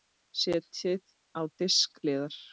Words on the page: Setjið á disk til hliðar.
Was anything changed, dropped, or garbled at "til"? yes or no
yes